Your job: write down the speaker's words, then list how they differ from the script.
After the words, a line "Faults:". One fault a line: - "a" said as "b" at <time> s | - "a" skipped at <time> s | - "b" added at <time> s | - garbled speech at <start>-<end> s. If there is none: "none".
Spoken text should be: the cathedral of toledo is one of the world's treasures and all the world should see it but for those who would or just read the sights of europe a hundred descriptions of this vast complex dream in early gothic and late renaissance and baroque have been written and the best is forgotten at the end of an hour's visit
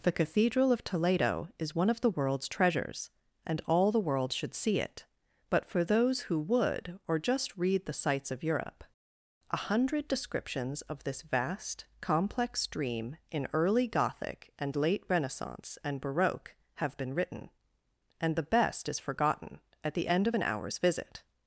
the cathedral of toledo is one of the world's treasures and all the world should see it but for those who would or just read the sights of europe a hundred descriptions of this vast complex dream in early gothic and late renaissance and baroque have been written and the best is forgotten at the end of an hour's visit
Faults:
none